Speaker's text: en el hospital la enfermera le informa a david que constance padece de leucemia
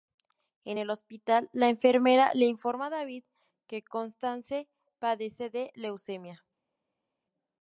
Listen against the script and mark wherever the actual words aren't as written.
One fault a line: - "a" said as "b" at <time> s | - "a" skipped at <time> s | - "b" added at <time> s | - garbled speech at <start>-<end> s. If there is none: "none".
none